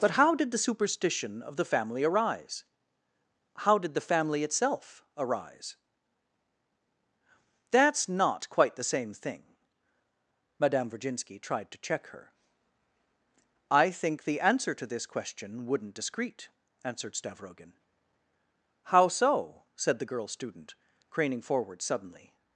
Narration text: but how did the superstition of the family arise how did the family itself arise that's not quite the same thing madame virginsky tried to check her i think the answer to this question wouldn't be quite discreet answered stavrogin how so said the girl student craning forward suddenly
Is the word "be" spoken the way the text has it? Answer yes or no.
no